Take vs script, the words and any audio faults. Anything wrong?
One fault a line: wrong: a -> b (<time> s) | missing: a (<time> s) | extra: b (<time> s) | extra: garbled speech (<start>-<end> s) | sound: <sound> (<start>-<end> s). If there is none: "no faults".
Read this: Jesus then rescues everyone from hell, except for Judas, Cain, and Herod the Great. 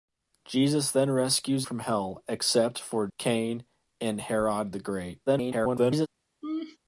missing: everyone (1.7 s)
missing: Judas (3.1 s)
extra: garbled speech (5.3-6.1 s)
sound: laugh (6.4-6.8 s)